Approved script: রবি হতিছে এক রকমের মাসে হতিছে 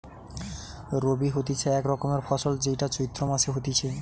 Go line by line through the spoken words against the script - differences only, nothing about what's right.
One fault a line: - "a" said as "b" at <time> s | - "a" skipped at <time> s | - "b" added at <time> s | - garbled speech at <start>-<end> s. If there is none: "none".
- "ফসল যেইটা চৈত্র" added at 2.3 s